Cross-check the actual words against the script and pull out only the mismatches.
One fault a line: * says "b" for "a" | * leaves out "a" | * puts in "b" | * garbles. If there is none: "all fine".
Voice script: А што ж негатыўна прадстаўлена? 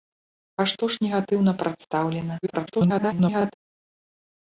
* garbles